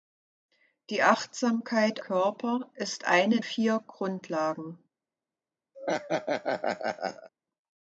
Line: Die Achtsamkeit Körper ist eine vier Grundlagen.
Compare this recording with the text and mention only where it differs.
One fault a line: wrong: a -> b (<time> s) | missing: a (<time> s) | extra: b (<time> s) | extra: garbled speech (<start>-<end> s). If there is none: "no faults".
no faults